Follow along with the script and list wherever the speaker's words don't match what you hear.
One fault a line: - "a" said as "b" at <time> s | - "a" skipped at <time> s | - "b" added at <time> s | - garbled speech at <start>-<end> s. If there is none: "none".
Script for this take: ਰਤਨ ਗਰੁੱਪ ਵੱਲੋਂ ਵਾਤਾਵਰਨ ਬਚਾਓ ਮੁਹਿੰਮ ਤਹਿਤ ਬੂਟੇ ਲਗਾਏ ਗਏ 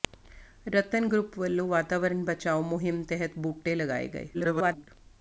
- garbled speech at 4.3-4.9 s